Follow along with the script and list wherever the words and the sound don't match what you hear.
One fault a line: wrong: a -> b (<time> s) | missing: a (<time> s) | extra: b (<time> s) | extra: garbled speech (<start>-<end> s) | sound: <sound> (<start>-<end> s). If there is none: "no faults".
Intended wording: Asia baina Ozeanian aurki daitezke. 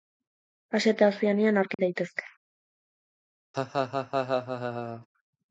wrong: baina -> eta (0.9 s)
sound: dropout (1.7-1.8 s)
sound: laugh (3.5-5.1 s)